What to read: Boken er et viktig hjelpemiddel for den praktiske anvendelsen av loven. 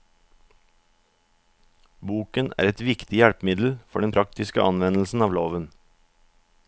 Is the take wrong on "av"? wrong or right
right